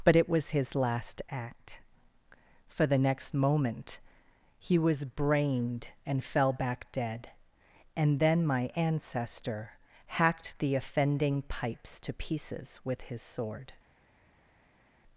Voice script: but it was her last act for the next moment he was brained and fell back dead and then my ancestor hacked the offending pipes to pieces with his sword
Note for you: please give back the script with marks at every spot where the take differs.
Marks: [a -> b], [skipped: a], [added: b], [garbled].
but it was [her -> his] last act for the next moment he was brained and fell back dead and then my ancestor hacked the offending pipes to pieces with his sword